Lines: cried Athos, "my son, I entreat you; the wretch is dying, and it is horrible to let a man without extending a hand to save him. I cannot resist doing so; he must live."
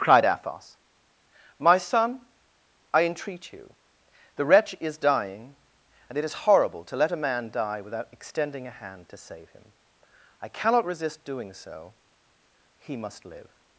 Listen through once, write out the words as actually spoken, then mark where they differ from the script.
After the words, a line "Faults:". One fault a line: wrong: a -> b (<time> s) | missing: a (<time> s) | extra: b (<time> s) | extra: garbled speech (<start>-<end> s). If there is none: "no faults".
cried Athos, "my son, I entreat you; the wretch is dying, and it is horrible to let a man die without extending a hand to save him. I cannot resist doing so; he must live."
Faults:
extra: die (7.5 s)